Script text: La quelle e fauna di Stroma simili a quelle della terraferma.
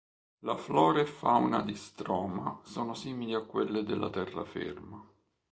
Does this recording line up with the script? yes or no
no